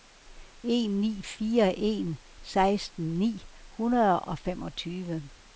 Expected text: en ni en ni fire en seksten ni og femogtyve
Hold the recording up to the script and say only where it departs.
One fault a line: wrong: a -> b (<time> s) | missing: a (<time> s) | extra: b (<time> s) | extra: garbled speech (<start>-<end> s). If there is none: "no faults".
missing: en ni (1.2 s)
extra: hundrede (3.7 s)